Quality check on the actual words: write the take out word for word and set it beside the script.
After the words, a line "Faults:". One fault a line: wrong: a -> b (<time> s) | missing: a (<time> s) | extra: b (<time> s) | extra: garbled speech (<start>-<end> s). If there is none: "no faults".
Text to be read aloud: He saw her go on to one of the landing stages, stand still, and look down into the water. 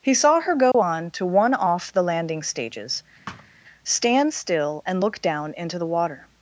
He saw her go on to one off the landing stages, stand still, and look down into the water.
Faults:
wrong: of -> off (1.5 s)